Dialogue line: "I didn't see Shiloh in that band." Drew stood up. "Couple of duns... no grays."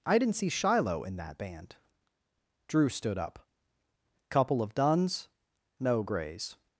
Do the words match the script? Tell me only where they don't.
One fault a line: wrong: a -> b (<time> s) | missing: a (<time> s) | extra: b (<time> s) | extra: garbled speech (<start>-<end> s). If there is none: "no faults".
no faults